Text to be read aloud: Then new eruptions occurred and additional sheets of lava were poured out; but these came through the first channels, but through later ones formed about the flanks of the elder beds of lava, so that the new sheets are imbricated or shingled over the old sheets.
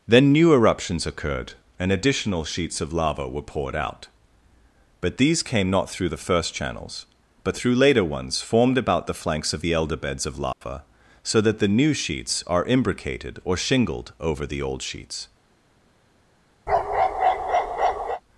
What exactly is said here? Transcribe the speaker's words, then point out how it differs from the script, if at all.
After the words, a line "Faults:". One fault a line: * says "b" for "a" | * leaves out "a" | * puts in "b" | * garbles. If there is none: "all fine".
Then new eruptions occurred and additional sheets of lava were poured out; but these came not through the first channels, but through later ones formed about the flanks of the elder beds of lava, so that the new sheets are imbricated or shingled over the old sheets.
Faults:
* puts in "not"